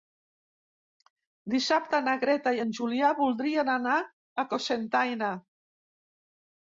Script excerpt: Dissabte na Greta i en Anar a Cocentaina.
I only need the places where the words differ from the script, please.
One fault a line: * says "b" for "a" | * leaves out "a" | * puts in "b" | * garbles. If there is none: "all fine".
* puts in "Julià voldrien"